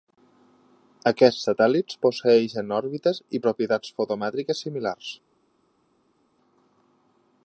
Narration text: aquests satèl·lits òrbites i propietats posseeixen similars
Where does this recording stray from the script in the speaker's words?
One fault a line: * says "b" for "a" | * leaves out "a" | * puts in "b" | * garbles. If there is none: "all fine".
* puts in "posseeixen"
* says "fotomètriques" for "posseeixen"